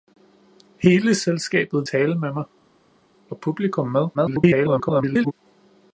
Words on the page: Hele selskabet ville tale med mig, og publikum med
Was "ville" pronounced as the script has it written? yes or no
no